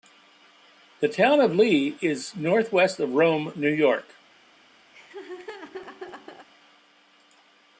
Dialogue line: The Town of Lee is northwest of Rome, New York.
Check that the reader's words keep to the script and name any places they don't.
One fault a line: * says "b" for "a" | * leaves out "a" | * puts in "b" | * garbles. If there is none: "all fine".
all fine